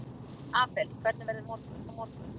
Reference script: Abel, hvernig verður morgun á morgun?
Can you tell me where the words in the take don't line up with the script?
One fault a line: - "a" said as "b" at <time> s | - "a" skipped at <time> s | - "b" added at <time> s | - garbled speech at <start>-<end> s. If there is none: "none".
none